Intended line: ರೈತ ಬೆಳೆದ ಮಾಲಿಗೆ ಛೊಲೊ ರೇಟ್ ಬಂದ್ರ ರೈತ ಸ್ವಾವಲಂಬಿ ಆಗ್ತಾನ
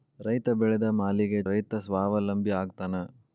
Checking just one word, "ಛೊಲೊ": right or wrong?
wrong